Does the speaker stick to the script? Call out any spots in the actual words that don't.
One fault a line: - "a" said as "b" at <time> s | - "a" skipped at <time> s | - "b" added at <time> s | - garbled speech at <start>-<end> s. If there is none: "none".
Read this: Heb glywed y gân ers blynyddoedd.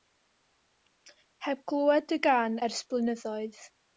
none